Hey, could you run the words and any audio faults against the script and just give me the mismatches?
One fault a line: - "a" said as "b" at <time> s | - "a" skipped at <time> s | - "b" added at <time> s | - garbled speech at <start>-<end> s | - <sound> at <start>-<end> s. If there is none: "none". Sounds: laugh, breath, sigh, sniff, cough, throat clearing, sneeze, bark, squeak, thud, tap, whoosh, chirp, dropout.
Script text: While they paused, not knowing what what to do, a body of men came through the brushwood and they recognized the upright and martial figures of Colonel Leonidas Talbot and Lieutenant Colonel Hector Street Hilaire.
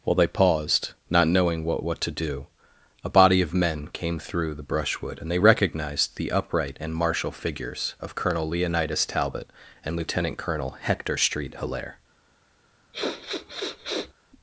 - sniff at 12.9-14.1 s